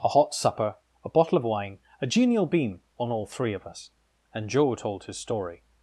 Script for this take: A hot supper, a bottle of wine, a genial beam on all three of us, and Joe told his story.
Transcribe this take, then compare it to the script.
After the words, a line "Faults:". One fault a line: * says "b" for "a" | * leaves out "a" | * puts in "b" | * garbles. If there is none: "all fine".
A hot supper, a bottle of wine, a genial beam on all three of us, and Joe told his story.
Faults:
all fine